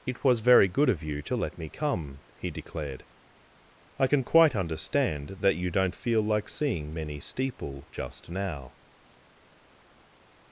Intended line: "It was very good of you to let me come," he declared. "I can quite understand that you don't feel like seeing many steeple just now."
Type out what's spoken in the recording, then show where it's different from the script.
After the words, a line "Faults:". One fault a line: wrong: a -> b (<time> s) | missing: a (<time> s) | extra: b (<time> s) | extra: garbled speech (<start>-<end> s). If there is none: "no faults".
"It was very good of you to let me come," he declared. "I can quite understand that you don't feel like seeing many steeple just now."
Faults:
no faults